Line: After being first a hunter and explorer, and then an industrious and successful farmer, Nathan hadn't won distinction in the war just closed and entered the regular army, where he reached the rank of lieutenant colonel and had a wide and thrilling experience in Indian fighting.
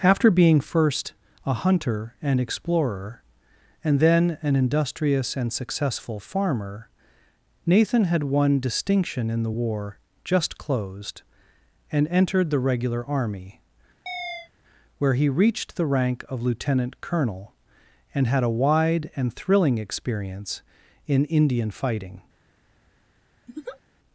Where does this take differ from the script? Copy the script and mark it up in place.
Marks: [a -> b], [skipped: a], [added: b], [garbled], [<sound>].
After being first a hunter and explorer, and then an industrious and successful farmer, Nathan [hadn't -> had] won distinction in the war just closed and entered the regular army, [chirp] where he reached the rank of lieutenant colonel and had a wide and thrilling experience in Indian fighting. [laugh]